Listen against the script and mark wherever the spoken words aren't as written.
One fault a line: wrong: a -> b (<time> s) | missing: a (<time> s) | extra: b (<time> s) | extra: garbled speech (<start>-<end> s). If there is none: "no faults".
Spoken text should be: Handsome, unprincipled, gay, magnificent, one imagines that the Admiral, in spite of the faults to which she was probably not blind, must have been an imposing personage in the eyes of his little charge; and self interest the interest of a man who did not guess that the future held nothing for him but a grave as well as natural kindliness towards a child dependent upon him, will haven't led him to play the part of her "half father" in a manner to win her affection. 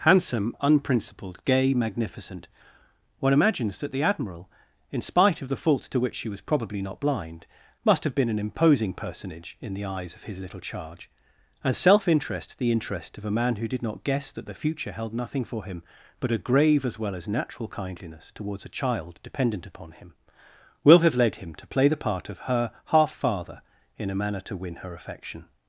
wrong: haven't -> have (21.0 s)